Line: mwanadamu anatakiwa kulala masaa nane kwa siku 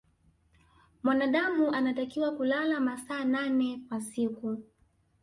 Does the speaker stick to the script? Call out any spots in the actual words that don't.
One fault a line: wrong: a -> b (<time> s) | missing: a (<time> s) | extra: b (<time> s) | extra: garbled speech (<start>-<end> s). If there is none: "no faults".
no faults